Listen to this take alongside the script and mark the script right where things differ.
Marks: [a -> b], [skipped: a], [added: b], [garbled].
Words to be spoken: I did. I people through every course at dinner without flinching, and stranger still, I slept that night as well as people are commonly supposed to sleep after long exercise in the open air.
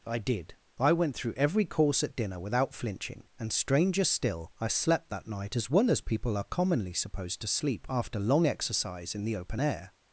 I did. I [people -> went] through every course at dinner without flinching, and stranger still, I slept that night as well as people are commonly supposed to sleep after long exercise in the open air.